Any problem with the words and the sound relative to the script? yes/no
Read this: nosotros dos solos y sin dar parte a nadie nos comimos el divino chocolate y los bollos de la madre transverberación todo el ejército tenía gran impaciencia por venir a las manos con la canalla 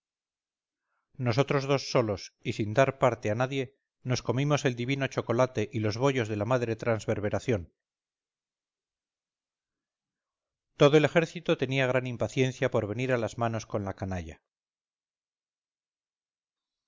no